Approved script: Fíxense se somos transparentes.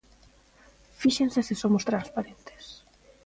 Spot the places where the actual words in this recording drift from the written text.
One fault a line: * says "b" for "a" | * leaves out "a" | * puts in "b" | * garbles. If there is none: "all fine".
all fine